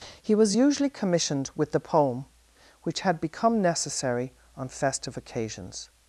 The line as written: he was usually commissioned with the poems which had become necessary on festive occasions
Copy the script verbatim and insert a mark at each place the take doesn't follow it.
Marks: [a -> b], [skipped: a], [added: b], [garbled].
he was usually commissioned with the [poems -> poem] which had become necessary on festive occasions